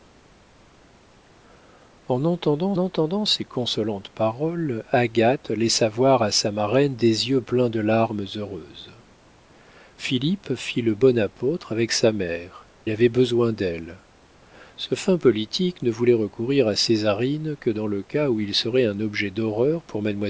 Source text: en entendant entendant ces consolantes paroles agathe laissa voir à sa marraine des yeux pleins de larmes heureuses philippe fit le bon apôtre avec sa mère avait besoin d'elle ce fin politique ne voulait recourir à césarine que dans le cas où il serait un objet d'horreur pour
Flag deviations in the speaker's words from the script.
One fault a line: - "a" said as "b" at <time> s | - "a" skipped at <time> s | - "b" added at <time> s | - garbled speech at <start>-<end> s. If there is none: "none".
none